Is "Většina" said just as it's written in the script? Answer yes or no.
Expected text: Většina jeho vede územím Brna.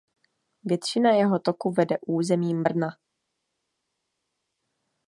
yes